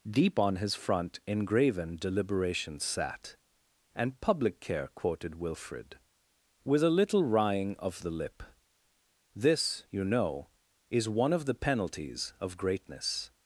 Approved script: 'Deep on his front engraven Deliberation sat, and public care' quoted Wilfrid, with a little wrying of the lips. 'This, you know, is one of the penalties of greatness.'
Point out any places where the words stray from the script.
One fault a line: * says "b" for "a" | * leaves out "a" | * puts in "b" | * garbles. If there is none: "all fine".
* says "lip" for "lips"